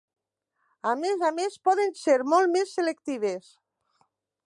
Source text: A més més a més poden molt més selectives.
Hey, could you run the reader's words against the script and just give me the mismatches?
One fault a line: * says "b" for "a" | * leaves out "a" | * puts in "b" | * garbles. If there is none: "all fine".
* leaves out "més"
* puts in "ser"